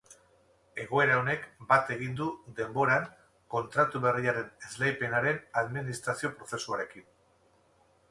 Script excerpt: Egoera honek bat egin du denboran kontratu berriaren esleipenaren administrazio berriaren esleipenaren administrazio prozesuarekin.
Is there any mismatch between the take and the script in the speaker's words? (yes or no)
yes